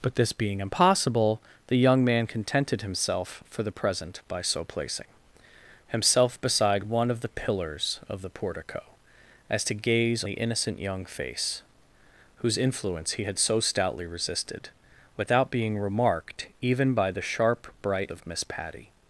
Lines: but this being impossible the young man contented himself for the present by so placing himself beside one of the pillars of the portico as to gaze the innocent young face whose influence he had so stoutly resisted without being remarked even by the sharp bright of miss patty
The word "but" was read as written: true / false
true